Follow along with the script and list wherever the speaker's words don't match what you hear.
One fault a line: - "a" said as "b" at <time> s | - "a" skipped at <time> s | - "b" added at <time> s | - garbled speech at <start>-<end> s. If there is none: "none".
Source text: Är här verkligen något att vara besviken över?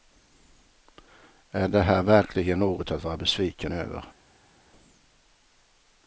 - "det" added at 1.7 s